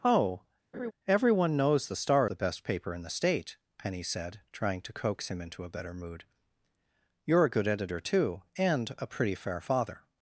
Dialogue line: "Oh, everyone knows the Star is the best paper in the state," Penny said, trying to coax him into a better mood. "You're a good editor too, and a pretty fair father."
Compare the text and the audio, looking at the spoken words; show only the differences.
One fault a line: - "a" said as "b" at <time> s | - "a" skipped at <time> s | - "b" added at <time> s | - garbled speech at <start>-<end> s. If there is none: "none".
- "is" skipped at 2.3 s